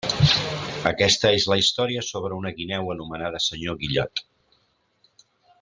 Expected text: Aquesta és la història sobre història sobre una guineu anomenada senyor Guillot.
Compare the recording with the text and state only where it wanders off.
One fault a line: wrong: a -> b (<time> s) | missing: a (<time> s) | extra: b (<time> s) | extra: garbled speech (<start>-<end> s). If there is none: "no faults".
missing: història sobre (2.4 s)